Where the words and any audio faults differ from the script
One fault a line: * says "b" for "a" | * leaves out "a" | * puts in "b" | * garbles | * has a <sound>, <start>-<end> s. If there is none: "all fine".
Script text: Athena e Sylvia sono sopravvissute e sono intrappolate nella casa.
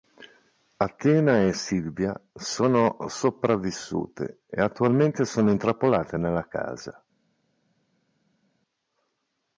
* puts in "attualmente"